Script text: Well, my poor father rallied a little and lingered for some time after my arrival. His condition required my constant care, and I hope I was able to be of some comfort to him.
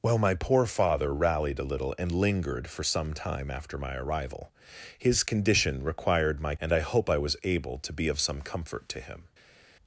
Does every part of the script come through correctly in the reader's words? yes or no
no